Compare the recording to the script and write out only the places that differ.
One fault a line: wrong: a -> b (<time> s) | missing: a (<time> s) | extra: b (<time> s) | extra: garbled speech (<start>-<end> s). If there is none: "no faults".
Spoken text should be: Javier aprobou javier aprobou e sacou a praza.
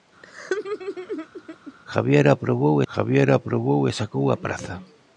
no faults